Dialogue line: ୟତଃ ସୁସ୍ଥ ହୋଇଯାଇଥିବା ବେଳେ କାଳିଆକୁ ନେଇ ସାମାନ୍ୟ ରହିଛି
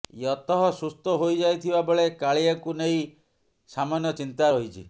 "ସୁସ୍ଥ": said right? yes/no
yes